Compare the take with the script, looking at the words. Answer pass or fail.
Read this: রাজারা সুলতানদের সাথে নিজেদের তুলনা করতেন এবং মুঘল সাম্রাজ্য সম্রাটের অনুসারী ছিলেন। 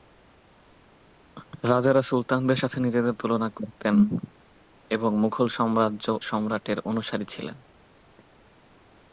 pass